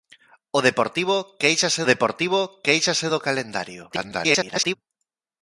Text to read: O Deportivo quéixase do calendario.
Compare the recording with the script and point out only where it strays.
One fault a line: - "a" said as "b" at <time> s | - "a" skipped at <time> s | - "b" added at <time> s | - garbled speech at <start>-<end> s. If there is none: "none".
- "Deportivo quéixase" added at 1.9 s
- garbled speech at 3.9-4.8 s